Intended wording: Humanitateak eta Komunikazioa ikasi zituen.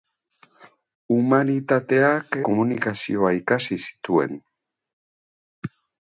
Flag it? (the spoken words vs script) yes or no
yes